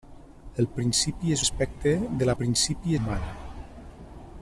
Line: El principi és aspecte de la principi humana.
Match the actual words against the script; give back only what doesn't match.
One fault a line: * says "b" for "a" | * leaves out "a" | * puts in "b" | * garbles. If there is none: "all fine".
all fine